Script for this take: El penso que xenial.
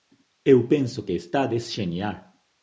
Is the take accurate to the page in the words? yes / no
no